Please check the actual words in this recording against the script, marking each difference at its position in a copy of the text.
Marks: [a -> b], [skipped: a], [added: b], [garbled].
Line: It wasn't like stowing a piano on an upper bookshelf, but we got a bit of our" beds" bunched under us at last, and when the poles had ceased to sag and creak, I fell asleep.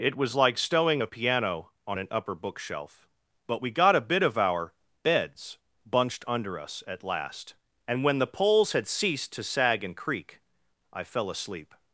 It [wasn't -> was] like stowing a piano on an upper bookshelf, but we got a bit of our" beds" bunched under us at last, and when the poles had ceased to sag and creak, I fell asleep.